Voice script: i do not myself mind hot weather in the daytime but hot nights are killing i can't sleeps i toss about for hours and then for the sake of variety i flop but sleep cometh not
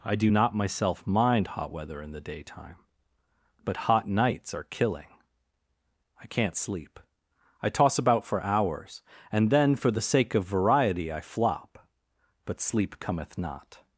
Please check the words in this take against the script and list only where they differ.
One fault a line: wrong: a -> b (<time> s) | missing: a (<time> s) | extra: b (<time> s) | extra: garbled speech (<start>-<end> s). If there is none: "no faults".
wrong: sleeps -> sleep (6.6 s)